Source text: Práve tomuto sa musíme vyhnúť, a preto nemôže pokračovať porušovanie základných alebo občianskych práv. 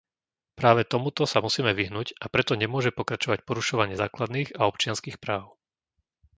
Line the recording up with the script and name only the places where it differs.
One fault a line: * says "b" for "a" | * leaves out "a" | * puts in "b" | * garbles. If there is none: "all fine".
* says "a" for "alebo"